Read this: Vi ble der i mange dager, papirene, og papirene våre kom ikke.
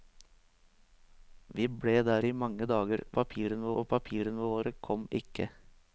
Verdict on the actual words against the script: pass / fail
pass